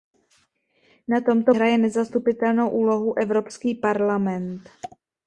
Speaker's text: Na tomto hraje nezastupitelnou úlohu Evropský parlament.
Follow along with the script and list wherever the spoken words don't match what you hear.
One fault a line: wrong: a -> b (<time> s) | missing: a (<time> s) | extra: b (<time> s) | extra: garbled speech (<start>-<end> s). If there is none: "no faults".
no faults